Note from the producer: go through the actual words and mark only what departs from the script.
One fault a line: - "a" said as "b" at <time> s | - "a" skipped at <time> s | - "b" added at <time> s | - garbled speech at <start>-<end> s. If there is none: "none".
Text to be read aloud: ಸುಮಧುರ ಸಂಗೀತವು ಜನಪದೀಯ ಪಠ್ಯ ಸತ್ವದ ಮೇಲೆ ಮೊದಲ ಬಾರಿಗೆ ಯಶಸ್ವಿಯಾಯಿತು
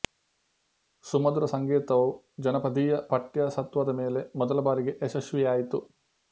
none